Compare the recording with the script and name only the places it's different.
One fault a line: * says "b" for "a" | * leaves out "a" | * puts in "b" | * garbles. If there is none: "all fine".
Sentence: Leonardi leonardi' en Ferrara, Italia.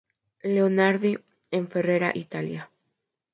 * leaves out "leonardi"